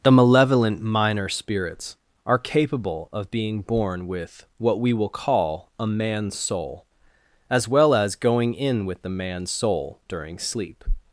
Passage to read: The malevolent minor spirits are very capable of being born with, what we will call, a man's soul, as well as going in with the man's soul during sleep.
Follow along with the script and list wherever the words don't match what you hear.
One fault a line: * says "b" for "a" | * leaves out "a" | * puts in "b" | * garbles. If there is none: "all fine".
* leaves out "very"